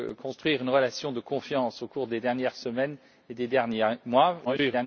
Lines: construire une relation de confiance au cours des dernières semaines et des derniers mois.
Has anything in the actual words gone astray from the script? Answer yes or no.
yes